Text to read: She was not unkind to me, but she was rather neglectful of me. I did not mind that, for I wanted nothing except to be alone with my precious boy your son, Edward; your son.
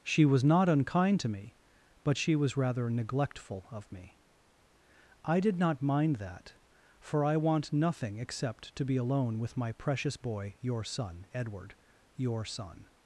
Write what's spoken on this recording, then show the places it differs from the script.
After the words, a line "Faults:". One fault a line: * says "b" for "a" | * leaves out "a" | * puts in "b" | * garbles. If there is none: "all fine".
She was not unkind to me, but she was rather neglectful of me. I did not mind that, for I want nothing except to be alone with my precious boy your son, Edward; your son.
Faults:
* says "want" for "wanted"